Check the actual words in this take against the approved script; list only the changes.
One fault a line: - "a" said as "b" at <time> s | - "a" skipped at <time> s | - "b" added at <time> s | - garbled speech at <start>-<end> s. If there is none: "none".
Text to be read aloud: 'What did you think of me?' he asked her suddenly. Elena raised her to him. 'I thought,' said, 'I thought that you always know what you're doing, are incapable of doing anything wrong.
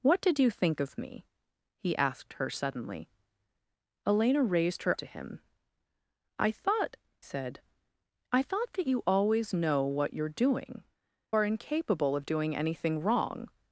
none